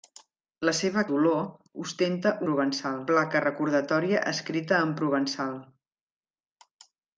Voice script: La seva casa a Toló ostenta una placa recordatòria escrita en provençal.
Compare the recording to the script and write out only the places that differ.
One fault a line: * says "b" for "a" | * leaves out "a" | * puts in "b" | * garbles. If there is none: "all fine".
* leaves out "casa a"
* says "provençal" for "una"